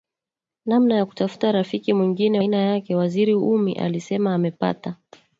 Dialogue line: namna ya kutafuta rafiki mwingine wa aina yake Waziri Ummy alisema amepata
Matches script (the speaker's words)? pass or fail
fail